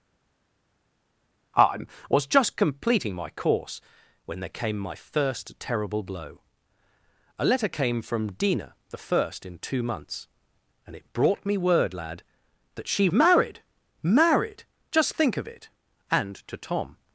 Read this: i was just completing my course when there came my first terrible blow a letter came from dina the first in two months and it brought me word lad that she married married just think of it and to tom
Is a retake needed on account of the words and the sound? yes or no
no